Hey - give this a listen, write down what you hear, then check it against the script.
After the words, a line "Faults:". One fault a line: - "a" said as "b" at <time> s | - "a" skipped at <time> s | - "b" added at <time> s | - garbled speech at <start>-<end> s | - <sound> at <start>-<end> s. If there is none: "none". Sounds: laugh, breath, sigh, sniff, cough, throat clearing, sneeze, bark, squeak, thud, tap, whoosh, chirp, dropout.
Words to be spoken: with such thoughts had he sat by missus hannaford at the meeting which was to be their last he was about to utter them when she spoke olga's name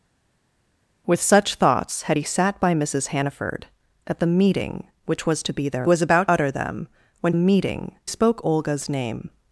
with such thoughts had he sat by missus hannaford at the meeting which was to be their was about utter them when meeting spoke olga's name
Faults:
- "last he" skipped at 5.9 s
- "to" skipped at 6.3 s
- "she" said as "meeting" at 7.3 s